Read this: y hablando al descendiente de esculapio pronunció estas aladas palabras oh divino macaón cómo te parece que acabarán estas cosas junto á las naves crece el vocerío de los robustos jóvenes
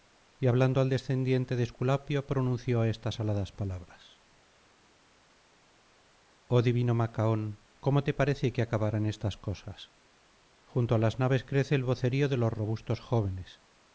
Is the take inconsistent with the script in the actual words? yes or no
no